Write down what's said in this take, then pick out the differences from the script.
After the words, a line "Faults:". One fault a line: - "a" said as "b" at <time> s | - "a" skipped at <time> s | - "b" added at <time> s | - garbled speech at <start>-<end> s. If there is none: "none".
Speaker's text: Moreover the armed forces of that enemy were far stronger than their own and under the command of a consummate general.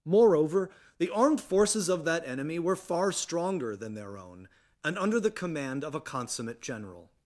Moreover the armed forces of that enemy were far stronger than their own and under the command of a consummate general.
Faults:
none